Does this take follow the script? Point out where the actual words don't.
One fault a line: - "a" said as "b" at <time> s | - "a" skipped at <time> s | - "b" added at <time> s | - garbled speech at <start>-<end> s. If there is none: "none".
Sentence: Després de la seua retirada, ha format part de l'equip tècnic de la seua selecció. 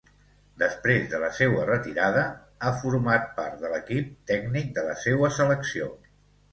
none